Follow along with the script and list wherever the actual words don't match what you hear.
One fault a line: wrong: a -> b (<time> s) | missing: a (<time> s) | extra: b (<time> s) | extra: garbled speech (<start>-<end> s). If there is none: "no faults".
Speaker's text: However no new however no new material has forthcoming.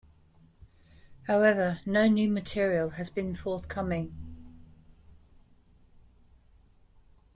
missing: however no new (2.3 s)
extra: been (3.1 s)